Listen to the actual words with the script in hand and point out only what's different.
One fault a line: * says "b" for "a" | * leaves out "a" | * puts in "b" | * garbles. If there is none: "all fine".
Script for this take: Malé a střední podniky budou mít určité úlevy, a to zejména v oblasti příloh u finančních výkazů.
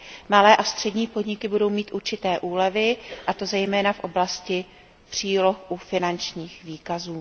all fine